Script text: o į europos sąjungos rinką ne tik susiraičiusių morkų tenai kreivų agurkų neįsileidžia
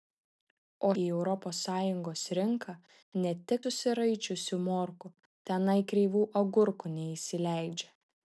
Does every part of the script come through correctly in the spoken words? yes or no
yes